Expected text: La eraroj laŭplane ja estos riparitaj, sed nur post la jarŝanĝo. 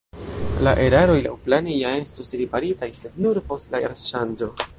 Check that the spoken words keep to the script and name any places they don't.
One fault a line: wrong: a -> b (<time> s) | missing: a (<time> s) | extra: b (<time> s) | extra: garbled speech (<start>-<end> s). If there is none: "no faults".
no faults